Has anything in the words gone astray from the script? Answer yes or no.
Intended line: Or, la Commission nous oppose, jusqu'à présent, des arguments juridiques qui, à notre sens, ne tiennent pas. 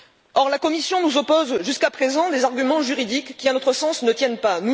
no